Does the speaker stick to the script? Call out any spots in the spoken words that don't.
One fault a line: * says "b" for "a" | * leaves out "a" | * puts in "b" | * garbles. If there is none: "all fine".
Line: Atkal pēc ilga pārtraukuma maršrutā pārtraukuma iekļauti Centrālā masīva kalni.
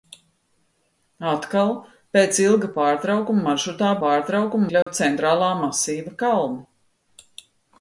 all fine